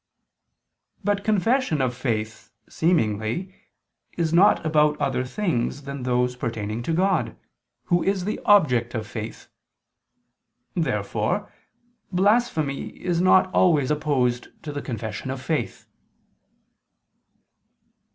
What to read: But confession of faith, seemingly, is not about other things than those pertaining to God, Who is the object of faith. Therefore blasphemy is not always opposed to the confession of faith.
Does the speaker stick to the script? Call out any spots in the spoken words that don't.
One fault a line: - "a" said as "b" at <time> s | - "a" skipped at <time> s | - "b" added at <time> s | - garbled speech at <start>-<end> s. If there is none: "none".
none